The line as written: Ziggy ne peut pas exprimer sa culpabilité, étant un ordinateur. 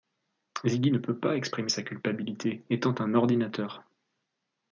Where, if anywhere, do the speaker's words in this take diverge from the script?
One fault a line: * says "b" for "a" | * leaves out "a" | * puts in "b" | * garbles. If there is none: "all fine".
all fine